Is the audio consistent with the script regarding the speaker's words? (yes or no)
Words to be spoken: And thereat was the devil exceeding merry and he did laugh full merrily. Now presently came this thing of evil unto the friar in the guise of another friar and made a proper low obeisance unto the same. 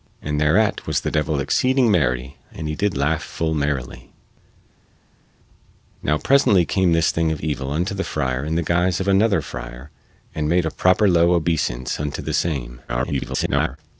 no